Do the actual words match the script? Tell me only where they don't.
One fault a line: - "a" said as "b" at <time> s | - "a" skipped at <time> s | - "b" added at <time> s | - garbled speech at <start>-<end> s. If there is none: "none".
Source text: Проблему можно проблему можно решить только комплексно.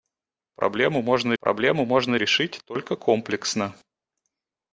none